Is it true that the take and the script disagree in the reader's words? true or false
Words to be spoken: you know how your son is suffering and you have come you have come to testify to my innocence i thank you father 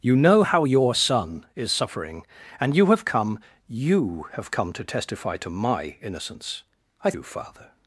true